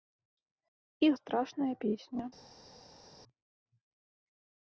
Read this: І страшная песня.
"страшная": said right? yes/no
yes